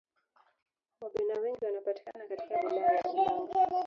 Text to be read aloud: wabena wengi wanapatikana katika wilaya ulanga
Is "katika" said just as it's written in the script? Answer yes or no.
yes